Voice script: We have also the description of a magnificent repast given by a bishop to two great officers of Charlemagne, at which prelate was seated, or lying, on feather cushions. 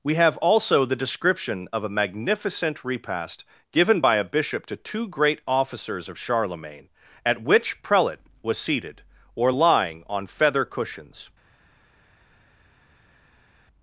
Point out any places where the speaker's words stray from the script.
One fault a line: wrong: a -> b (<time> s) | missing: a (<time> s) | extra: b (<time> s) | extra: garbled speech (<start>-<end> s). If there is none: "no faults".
no faults